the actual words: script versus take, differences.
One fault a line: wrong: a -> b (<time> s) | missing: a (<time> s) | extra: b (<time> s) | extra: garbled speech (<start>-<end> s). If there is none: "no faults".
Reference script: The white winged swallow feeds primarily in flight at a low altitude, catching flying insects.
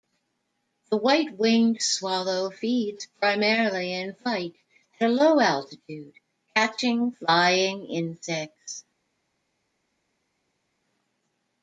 no faults